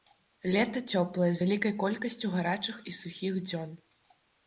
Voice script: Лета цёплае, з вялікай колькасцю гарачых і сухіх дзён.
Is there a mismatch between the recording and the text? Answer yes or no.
no